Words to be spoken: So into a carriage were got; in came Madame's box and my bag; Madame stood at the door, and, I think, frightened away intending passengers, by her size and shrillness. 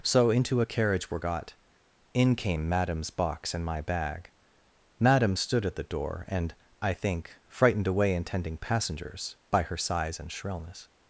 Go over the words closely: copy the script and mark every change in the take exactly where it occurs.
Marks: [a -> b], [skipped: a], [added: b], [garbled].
So into a carriage were got; in came Madame's box and my bag; Madame stood at the door, and, I think, frightened away intending passengers, by her size and shrillness.